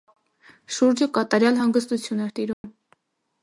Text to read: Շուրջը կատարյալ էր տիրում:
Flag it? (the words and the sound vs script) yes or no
yes